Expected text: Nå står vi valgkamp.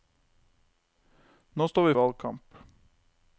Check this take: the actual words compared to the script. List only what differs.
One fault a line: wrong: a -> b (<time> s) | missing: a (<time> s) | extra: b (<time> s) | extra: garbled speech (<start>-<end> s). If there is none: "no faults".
no faults